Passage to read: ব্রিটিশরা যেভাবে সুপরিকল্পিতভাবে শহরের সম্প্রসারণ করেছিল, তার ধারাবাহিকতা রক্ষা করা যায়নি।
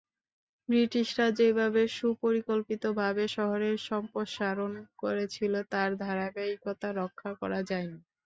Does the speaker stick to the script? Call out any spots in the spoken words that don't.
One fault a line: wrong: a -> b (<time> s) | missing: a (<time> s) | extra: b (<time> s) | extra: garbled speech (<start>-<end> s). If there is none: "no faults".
no faults